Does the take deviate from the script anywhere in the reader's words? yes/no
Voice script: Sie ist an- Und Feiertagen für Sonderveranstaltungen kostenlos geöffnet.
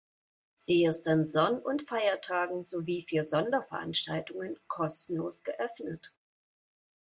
yes